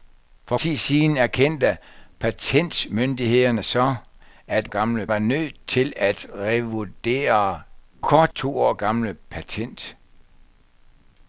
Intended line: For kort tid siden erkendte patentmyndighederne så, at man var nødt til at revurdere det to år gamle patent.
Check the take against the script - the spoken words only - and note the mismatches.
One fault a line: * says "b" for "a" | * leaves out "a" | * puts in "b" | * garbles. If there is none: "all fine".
* leaves out "kort"
* says "gamle" for "man"
* says "kort" for "det"